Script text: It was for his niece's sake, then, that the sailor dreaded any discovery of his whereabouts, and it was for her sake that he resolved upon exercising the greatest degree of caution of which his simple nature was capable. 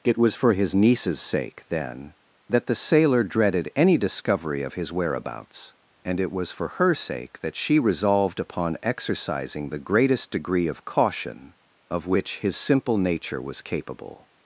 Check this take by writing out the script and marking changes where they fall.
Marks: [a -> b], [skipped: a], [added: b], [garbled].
It was for his niece's sake, then, that the sailor dreaded any discovery of his whereabouts, and it was for her sake that [he -> she] resolved upon exercising the greatest degree of caution of which his simple nature was capable.